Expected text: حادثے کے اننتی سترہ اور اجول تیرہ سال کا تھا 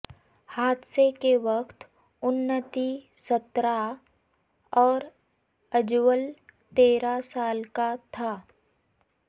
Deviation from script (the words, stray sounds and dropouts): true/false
true